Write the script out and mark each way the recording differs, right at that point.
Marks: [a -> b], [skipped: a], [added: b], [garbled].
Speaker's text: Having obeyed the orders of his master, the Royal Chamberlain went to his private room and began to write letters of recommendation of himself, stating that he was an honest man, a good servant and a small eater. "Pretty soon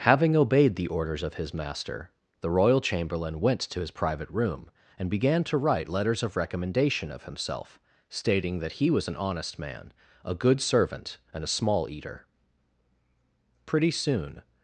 Having obeyed the orders of his master, the Royal Chamberlain went to his private room and began to write letters of recommendation of himself, stating that he was an honest man, a good servant and a small eater. "Pretty soon